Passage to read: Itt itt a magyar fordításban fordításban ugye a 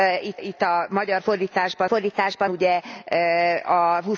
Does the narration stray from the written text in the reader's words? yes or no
no